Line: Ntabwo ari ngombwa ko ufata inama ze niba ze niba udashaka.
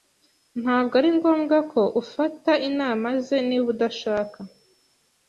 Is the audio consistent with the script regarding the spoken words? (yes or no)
no